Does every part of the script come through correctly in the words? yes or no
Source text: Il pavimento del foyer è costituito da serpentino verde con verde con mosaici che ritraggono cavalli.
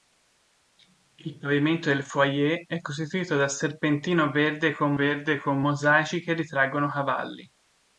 yes